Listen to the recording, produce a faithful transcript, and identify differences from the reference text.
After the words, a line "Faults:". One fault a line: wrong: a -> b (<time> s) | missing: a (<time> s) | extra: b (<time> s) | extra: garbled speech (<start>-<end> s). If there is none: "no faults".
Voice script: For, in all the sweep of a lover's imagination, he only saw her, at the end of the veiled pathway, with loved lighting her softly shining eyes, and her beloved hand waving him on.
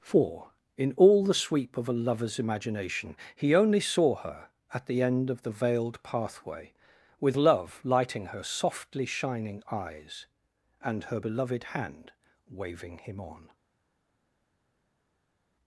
For, in all the sweep of a lover's imagination, he only saw her, at the end of the veiled pathway, with love lighting her softly shining eyes, and her beloved hand waving him on.
Faults:
wrong: loved -> love (7.3 s)